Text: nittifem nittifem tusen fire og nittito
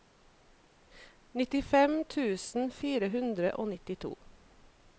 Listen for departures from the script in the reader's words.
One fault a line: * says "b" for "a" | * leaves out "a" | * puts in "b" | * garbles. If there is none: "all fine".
* leaves out "nittifem"
* puts in "hundre"